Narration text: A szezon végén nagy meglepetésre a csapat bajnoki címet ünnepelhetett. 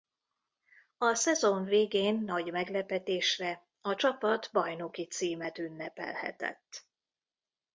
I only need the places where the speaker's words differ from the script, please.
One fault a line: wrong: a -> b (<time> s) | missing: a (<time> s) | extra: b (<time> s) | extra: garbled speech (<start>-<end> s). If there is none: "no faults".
no faults